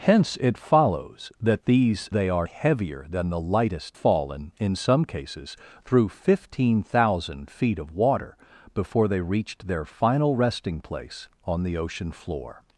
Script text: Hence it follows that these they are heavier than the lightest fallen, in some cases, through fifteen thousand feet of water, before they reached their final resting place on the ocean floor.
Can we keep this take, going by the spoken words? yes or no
yes